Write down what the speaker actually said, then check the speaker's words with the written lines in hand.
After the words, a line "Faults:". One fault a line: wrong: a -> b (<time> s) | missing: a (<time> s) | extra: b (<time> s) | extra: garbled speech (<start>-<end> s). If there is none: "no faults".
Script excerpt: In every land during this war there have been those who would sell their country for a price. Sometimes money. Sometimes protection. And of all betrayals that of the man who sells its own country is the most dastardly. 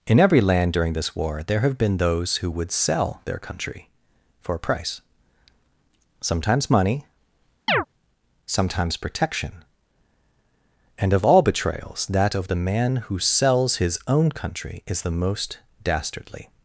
In every land during this war there have been those who would sell their country for a price. Sometimes money. Sometimes protection. And of all betrayals that of the man who sells his own country is the most dastardly.
Faults:
wrong: its -> his (13.8 s)